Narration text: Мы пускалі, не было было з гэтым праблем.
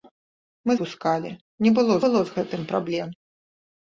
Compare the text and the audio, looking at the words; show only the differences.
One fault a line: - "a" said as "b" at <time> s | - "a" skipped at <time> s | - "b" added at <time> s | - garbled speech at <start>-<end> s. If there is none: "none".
none